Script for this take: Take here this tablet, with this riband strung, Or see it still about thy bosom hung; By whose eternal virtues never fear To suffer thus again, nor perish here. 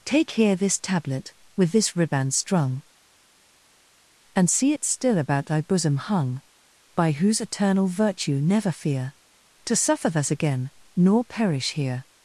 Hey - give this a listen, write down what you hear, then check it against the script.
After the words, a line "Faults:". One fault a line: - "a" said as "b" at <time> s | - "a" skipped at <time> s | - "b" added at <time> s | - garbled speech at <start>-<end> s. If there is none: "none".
Take here this tablet, with this riband strung, And see it still about thy bosom hung; By whose eternal virtue never fear To suffer thus again, nor perish here.
Faults:
- "Or" said as "And" at 4.4 s
- "virtues" said as "virtue" at 7.9 s